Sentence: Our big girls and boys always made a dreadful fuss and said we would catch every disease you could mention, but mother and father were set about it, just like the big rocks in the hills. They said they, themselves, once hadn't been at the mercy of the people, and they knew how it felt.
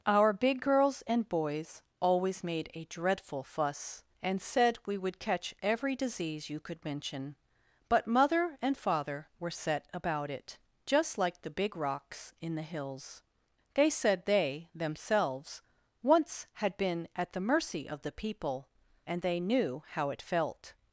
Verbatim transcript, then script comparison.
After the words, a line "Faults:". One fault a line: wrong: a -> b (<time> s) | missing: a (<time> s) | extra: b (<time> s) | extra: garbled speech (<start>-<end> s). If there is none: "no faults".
Our big girls and boys always made a dreadful fuss and said we would catch every disease you could mention, but mother and father were set about it, just like the big rocks in the hills. They said they, themselves, once had been at the mercy of the people, and they knew how it felt.
Faults:
wrong: hadn't -> had (16.5 s)